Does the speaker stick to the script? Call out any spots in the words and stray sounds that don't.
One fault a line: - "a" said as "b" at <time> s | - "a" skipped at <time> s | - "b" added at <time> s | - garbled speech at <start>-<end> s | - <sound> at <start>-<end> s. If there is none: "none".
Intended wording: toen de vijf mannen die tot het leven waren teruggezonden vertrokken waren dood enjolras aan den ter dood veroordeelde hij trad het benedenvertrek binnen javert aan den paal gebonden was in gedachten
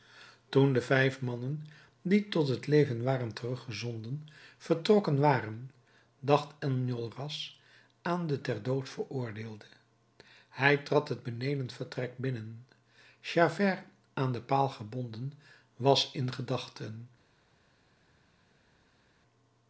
- "dood" said as "dacht" at 6.2 s